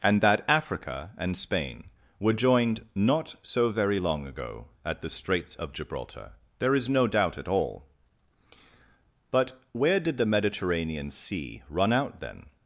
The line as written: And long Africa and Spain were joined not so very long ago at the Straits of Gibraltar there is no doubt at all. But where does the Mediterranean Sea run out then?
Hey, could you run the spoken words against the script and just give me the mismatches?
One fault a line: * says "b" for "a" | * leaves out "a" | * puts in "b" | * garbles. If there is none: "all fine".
* says "that" for "long"
* says "did" for "does"